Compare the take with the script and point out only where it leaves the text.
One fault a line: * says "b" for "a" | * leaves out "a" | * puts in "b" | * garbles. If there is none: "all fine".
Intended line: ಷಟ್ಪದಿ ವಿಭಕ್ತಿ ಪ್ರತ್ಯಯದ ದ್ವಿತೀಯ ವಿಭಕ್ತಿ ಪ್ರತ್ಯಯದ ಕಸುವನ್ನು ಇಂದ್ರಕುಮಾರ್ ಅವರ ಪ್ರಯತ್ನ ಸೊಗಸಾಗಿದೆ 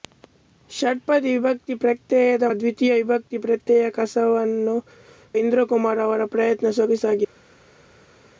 all fine